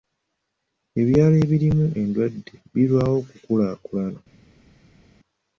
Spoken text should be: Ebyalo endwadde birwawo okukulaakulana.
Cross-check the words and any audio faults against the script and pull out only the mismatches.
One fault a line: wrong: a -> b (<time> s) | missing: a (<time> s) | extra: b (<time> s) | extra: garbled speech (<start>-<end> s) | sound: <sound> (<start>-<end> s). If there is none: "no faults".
extra: ebirimu (1.4 s)